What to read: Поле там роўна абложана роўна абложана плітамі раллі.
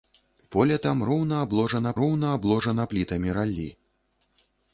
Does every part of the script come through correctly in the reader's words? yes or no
yes